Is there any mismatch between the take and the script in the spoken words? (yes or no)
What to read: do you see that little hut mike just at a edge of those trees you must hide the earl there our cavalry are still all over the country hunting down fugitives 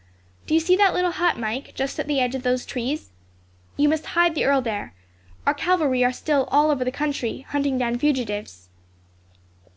yes